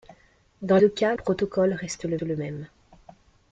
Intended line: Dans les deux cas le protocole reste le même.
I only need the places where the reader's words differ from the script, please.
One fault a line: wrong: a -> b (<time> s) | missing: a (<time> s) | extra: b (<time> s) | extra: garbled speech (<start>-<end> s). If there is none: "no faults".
missing: les (0.8 s)
missing: le (1.1 s)
extra: le (2.2 s)